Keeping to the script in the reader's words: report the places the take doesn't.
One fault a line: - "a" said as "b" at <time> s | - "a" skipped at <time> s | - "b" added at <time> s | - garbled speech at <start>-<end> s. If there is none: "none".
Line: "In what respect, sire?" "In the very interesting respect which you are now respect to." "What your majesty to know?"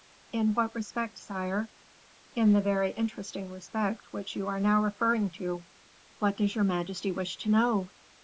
- "respect" said as "referring" at 4.8 s
- "does" added at 6.4 s
- "wish" added at 7.1 s